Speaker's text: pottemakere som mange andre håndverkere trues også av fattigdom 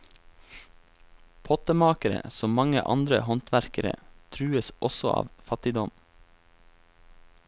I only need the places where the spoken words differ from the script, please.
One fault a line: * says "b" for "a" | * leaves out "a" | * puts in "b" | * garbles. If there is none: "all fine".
all fine